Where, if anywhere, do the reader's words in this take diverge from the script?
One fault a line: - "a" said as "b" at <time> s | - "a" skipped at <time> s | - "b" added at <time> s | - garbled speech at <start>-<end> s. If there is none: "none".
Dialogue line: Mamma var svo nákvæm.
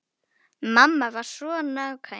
none